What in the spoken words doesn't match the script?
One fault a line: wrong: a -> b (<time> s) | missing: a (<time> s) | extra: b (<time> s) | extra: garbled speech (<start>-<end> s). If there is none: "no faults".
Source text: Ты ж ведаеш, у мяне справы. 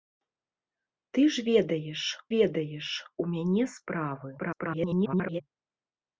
extra: ведаеш (2.4 s)
extra: garbled speech (4.4-5.4 s)